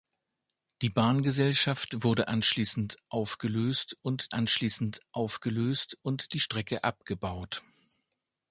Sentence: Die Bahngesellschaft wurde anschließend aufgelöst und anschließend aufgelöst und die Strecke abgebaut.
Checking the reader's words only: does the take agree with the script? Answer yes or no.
yes